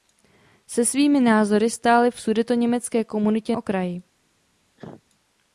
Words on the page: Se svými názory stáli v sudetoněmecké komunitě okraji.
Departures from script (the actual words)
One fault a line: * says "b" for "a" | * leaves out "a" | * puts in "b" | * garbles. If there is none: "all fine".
all fine